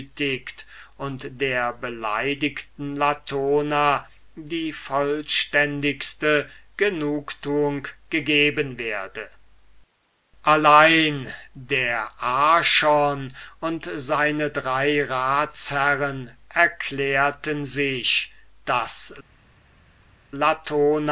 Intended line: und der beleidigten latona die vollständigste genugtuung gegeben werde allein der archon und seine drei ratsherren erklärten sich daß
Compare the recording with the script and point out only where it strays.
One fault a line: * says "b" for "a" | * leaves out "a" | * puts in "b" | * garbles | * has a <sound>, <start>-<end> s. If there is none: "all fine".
all fine